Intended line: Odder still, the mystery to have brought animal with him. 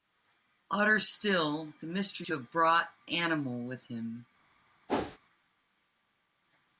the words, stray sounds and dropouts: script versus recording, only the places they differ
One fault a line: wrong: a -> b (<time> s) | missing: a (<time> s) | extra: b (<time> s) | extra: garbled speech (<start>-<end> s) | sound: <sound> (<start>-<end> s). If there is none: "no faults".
sound: whoosh (4.9-5.2 s)